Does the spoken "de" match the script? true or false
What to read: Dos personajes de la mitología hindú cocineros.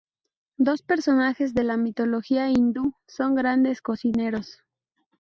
true